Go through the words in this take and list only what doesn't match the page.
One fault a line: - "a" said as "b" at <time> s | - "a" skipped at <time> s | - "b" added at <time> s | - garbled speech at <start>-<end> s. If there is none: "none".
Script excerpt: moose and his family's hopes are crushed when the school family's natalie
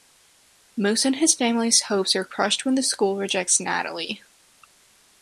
- "family's" said as "rejects" at 3.2 s